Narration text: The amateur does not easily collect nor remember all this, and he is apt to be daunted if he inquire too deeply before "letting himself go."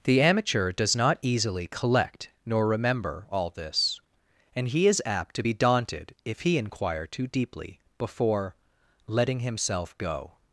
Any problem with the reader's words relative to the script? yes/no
no